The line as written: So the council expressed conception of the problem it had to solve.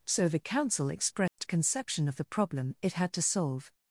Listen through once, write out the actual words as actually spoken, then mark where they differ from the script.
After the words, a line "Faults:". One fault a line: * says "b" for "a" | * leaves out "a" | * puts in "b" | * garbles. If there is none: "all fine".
So the council expressed conception of the problem it had to solve.
Faults:
all fine